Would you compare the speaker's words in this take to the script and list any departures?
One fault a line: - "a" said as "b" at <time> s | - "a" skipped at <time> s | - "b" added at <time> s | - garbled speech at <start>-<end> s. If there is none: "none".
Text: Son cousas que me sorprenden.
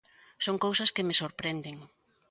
none